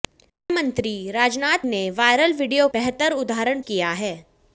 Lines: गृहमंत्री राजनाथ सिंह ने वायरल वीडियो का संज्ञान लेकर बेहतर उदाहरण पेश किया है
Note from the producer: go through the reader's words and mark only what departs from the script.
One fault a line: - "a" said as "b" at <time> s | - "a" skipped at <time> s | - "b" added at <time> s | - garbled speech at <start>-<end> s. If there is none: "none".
- "सिंह" skipped at 1.7 s
- "का संज्ञान लेकर" skipped at 2.7 s
- "पेश" skipped at 3.6 s